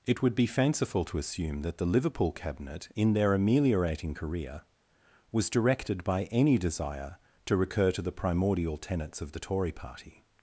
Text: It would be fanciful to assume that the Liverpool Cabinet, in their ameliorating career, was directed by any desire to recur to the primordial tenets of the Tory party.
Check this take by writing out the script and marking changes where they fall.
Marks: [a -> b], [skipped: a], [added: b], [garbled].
It would be fanciful to assume that the Liverpool Cabinet, in their ameliorating career, was directed by any desire to recur to the primordial tenets of the Tory party.